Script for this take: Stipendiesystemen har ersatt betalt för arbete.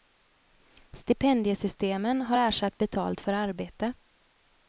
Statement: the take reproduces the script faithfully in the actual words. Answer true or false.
true